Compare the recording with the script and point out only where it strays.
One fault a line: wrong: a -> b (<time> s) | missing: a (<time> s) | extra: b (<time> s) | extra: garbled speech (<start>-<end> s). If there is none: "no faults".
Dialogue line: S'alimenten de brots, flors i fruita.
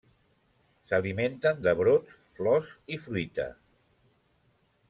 no faults